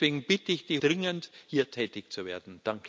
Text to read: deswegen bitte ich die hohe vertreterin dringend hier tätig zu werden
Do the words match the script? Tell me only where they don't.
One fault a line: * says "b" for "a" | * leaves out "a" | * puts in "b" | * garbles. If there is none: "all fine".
* leaves out "hohe vertreterin"